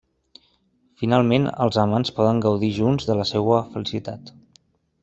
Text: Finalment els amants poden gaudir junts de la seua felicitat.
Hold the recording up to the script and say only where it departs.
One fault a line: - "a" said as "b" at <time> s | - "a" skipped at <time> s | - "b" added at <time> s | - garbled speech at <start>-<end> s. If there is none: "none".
none